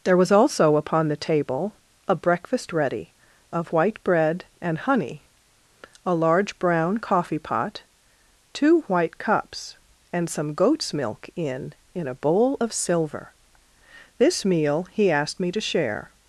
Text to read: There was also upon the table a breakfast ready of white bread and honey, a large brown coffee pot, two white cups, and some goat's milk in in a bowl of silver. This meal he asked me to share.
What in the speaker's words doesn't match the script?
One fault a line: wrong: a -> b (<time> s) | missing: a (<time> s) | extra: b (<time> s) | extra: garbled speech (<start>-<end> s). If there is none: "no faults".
no faults